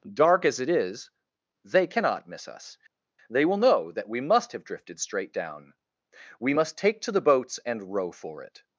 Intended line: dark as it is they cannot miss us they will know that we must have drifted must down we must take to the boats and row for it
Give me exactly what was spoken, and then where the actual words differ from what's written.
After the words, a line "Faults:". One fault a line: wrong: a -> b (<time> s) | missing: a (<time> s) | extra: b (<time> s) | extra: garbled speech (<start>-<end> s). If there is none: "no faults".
dark as it is they cannot miss us they will know that we must have drifted straight down we must take to the boats and row for it
Faults:
wrong: must -> straight (5.0 s)